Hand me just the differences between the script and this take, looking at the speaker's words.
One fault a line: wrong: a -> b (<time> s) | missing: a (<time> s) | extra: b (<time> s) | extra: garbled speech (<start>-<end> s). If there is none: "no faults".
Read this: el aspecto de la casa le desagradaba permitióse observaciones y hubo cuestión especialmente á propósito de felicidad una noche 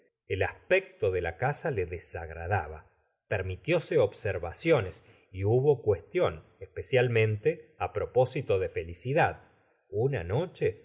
no faults